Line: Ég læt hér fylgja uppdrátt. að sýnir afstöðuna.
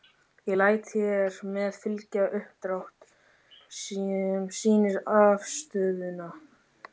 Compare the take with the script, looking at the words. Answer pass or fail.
fail